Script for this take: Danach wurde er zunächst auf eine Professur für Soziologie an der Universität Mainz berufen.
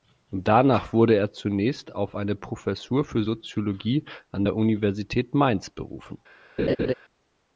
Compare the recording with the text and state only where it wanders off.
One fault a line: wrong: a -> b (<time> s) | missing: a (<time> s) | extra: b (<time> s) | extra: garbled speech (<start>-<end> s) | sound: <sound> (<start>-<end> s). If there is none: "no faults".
sound: laugh (6.6-6.9 s)